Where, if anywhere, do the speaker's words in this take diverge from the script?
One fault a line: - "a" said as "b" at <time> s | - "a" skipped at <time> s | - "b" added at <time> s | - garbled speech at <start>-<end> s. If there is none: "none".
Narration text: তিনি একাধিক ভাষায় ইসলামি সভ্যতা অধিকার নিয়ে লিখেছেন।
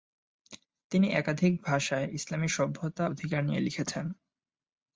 none